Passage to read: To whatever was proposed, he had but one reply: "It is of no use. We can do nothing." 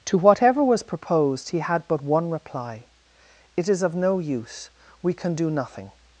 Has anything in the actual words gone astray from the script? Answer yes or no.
no